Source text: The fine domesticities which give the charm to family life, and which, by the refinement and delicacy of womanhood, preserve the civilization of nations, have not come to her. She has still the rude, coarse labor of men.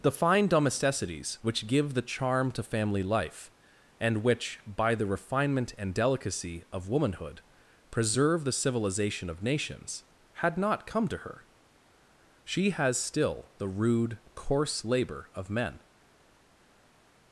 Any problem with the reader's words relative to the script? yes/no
yes